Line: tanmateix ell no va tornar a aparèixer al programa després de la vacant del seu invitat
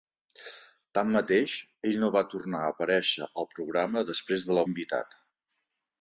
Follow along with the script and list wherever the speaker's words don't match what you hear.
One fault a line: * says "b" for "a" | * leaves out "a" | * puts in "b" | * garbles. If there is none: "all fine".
* leaves out "vacant del seu"